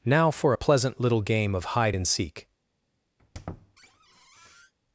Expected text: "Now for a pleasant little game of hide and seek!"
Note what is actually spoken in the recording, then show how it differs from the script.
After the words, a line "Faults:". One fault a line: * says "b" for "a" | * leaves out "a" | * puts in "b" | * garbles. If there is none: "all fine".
"Now for a pleasant little game of hide and seek!"
Faults:
all fine